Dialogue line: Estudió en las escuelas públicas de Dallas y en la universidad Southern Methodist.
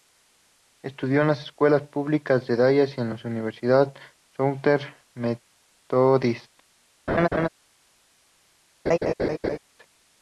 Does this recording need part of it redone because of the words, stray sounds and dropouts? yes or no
yes